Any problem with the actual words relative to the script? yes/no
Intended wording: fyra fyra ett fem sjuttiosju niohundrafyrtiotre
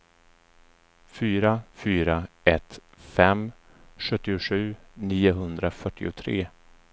no